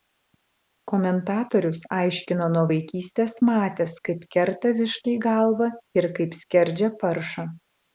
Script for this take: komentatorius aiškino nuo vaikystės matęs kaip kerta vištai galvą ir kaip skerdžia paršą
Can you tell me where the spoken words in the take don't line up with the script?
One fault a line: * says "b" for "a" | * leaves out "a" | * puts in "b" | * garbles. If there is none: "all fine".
all fine